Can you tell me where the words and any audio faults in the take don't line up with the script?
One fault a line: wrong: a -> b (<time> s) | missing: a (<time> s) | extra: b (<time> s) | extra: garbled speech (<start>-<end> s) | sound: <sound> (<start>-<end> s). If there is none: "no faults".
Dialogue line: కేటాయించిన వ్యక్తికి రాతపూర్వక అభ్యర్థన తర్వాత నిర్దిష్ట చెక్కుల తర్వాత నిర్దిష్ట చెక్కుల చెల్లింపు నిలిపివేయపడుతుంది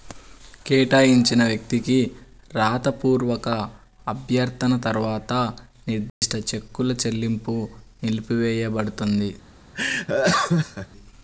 sound: dropout (6.1-6.2 s)
missing: తర్వాత నిర్దిష్ట చెక్కుల (6.9 s)
sound: laugh (9.7-10.9 s)